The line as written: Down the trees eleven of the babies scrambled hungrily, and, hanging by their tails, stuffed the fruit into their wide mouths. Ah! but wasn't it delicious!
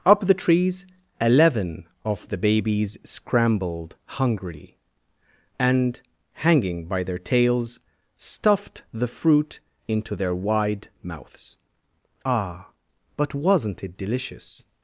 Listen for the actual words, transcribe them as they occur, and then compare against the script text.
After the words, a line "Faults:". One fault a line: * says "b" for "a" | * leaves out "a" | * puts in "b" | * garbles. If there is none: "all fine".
Up the trees eleven of the babies scrambled hungrily, and, hanging by their tails, stuffed the fruit into their wide mouths. Ah! but wasn't it delicious!
Faults:
* says "Up" for "Down"